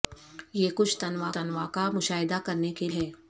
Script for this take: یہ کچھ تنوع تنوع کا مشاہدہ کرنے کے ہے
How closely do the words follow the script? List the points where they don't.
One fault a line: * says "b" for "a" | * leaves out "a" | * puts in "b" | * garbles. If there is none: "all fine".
all fine